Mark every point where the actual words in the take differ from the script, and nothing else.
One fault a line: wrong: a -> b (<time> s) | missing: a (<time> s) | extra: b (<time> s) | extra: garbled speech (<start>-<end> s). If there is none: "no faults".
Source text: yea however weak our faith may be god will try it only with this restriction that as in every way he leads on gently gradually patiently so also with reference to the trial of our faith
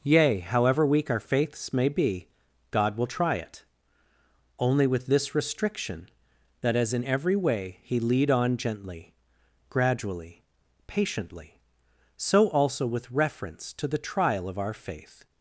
wrong: faith -> faiths (1.2 s)
wrong: leads -> lead (8.0 s)